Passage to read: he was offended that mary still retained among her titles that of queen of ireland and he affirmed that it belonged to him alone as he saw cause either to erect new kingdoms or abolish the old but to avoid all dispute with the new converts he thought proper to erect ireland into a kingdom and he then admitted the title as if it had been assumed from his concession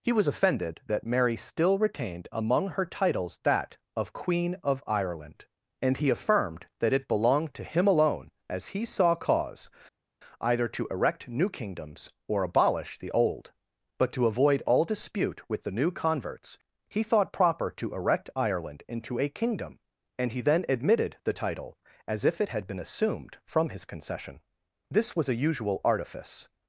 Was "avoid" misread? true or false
false